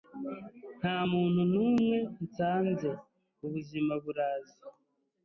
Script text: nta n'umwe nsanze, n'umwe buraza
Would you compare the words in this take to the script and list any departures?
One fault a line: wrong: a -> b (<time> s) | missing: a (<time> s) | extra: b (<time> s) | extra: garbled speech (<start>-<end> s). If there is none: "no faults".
extra: muntu (1.1 s)
wrong: n'umwe -> ubuzima (3.4 s)